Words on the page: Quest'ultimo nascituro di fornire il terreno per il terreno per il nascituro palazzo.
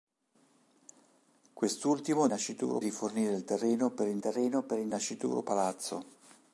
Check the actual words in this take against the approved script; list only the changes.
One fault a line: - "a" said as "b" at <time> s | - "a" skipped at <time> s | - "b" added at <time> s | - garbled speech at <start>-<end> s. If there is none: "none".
none